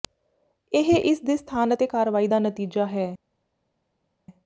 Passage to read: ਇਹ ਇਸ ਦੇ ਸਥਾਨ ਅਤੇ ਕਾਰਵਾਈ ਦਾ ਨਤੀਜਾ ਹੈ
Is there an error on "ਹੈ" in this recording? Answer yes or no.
no